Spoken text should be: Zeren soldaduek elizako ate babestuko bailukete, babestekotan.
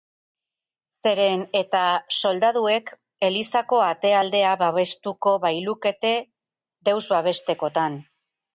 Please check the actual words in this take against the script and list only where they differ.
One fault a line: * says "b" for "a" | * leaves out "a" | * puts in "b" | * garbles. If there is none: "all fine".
* puts in "eta"
* puts in "aldea"
* puts in "deus"